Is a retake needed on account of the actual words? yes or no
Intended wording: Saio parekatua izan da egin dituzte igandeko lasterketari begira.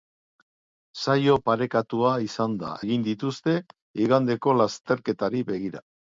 no